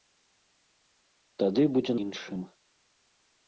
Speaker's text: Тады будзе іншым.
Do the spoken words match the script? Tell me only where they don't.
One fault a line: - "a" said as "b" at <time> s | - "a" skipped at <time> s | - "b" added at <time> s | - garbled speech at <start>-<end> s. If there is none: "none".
none